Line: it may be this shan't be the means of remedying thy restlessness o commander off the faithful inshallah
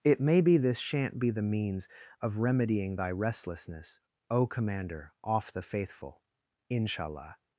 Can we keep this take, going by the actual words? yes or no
yes